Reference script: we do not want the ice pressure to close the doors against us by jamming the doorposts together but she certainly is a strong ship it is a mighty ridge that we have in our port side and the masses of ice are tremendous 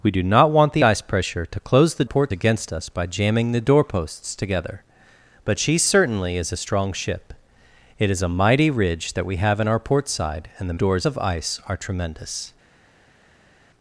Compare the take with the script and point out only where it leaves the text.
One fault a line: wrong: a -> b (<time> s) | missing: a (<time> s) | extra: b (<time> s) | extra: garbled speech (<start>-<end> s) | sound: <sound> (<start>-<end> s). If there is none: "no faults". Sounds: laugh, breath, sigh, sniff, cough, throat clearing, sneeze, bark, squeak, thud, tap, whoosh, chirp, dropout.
wrong: doors -> port (2.0 s)
wrong: masses -> doors (10.7 s)